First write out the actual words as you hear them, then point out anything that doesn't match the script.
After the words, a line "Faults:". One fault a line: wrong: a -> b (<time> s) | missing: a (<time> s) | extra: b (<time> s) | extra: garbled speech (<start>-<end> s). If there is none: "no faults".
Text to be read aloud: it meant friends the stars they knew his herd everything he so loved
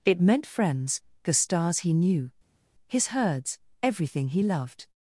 it meant friends the stars he knew his herds everything he loved
Faults:
wrong: they -> he (1.8 s)
wrong: herd -> herds (3.1 s)
missing: so (4.4 s)